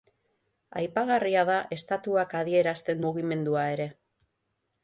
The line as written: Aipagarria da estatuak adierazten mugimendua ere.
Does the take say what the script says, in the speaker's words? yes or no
yes